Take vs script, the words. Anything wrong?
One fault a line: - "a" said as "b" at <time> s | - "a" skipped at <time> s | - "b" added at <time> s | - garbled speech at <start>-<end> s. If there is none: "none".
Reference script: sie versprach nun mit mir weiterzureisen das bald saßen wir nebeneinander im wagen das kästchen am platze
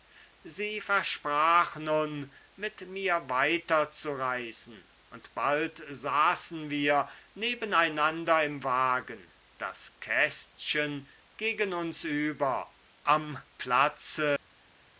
- "das" said as "und" at 5.1 s
- "gegen uns über" added at 11.4 s